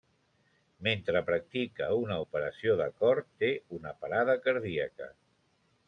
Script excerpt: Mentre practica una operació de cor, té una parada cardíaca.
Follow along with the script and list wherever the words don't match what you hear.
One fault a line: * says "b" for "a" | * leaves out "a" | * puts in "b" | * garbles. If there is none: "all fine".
all fine